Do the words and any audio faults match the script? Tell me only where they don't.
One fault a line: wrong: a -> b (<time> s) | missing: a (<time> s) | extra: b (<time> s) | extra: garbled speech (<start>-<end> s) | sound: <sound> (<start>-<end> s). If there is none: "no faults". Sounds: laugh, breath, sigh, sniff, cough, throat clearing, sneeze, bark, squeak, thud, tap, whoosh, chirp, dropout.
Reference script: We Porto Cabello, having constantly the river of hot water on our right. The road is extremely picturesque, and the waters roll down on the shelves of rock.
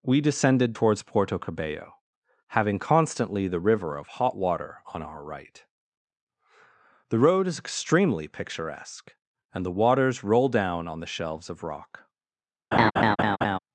extra: descended towards (0.2 s)
sound: laugh (12.7-13.6 s)